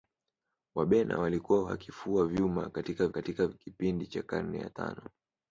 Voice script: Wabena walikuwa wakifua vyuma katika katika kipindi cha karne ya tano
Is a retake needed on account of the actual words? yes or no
no